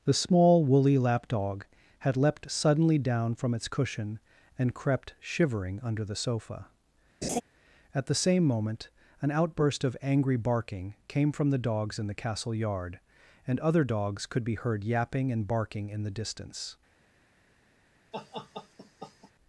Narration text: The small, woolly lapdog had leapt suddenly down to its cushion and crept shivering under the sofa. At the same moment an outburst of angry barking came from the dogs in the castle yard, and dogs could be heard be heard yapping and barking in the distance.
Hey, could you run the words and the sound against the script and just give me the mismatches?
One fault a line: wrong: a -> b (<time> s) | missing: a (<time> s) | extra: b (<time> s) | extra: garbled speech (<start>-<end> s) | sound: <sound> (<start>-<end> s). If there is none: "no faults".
wrong: to -> from (3.4 s)
sound: laugh (7.2-7.4 s)
extra: other (13.6 s)
missing: be heard (14.8 s)
sound: laugh (18.1-19.3 s)